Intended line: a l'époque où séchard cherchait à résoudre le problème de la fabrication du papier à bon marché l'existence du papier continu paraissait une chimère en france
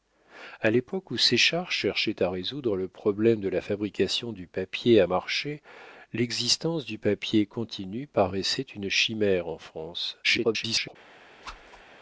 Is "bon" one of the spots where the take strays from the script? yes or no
yes